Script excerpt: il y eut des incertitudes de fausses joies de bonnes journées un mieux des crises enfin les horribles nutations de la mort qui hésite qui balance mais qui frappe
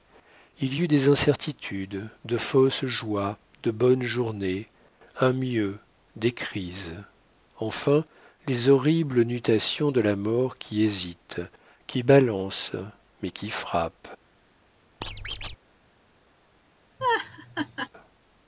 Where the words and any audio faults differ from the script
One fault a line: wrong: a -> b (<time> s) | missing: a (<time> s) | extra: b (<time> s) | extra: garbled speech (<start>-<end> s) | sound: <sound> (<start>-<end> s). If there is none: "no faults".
sound: squeak (15.0-15.6 s)
sound: laugh (17.0-17.9 s)